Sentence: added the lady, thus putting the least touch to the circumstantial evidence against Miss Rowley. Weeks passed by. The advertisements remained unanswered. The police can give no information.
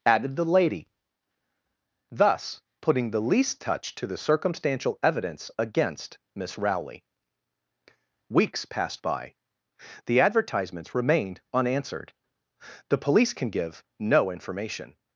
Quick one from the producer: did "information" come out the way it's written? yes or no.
yes